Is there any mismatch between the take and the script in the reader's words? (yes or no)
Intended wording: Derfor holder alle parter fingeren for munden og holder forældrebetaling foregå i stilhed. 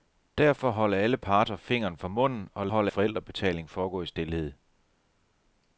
no